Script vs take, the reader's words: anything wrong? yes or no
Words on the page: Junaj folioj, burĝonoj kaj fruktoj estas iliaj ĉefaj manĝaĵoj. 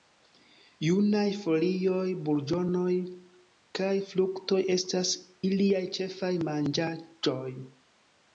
no